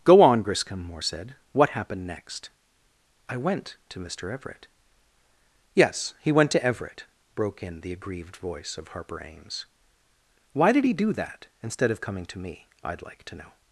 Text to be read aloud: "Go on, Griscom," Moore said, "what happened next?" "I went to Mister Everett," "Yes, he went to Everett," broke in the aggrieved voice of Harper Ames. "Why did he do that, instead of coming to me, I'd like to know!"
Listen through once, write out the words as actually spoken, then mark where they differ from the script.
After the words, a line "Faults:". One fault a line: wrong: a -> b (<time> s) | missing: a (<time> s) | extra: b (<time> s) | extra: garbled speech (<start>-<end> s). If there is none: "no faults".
"Go on, Griscom," Moore said, "what happened next?" "I went to Mister Everett," "Yes, he went to Everett," broke in the aggrieved voice of Harper Ames. "Why did he do that, instead of coming to me, I'd like to know!"
Faults:
no faults